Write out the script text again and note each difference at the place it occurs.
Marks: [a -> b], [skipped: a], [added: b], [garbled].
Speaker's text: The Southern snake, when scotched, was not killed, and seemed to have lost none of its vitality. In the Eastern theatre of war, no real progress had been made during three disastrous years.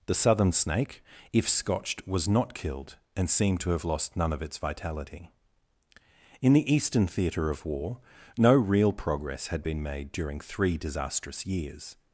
The Southern snake, [when -> if] scotched, was not killed, and seemed to have lost none of its vitality. In the Eastern theatre of war, no real progress had been made during three disastrous years.